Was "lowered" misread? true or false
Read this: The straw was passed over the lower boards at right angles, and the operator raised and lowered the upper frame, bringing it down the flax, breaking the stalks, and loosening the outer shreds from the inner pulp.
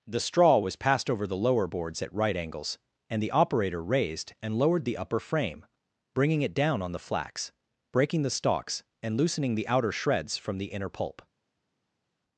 false